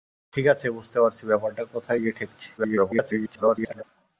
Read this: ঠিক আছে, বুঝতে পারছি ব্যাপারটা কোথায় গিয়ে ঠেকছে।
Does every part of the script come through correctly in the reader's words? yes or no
no